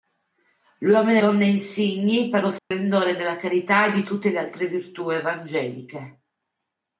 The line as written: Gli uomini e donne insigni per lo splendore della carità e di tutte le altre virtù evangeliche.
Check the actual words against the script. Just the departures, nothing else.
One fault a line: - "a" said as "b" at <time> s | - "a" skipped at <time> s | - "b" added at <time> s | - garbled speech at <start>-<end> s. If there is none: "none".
none